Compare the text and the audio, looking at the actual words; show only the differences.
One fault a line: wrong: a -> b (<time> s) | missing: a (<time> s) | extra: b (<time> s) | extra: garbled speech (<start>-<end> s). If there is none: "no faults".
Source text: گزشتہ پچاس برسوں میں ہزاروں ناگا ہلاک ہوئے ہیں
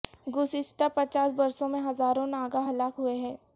no faults